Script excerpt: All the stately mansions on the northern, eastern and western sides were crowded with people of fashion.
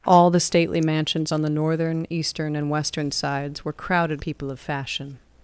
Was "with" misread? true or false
true